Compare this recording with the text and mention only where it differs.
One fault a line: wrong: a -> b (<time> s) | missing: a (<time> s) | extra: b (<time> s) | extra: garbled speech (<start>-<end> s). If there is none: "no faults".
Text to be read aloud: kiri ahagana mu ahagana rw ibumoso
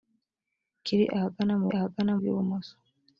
no faults